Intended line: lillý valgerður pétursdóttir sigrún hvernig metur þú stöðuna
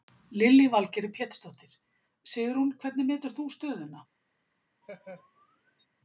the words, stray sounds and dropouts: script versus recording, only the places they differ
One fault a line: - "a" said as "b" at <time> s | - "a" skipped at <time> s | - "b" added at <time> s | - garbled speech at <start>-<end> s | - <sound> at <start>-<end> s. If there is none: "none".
- laugh at 4.8-5.9 s